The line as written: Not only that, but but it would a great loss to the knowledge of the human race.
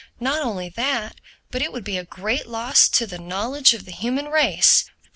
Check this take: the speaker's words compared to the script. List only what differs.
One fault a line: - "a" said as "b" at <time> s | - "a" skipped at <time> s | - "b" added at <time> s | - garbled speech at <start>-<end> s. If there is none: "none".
- "but" skipped at 1.6 s
- "be" added at 1.8 s